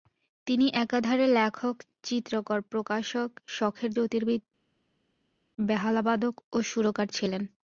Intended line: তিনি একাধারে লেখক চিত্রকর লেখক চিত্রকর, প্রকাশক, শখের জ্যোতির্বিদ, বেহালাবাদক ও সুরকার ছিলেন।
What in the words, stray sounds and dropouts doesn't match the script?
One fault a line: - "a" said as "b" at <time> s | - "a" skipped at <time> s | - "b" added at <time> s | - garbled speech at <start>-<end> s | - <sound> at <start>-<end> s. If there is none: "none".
- "লেখক চিত্রকর" skipped at 2.6 s